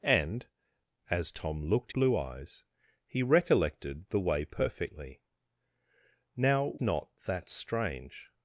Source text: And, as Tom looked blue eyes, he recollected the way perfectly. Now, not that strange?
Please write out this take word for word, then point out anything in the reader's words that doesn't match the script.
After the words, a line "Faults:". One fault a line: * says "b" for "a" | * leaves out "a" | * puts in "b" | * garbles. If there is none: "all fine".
And, as Tom looked blue eyes, he recollected the way perfectly. Now, not that strange?
Faults:
all fine